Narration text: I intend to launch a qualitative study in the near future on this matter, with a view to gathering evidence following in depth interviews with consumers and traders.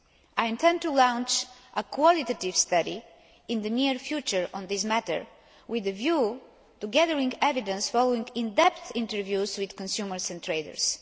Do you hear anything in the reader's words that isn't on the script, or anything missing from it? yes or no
no